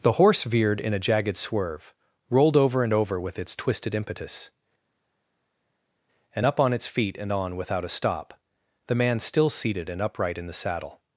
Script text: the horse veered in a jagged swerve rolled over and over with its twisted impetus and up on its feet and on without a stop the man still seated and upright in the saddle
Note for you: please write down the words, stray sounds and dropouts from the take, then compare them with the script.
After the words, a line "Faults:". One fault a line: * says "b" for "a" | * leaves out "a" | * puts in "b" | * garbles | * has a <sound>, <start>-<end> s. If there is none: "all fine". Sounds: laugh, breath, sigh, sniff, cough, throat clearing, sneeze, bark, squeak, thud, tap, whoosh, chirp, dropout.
the horse veered in a jagged swerve rolled over and over with its twisted impetus and up on its feet and on without a stop the man still seated and upright in the saddle
Faults:
all fine